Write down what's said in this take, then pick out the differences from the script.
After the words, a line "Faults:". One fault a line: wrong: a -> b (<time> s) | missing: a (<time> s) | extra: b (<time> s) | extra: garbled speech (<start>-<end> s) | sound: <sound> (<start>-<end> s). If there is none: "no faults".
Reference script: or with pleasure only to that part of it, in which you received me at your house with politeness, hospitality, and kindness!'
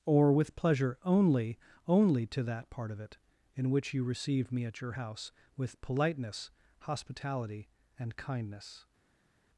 or with pleasure only only to that part of it, in which you received me at your house with politeness, hospitality, and kindness!'
Faults:
extra: only (1.9 s)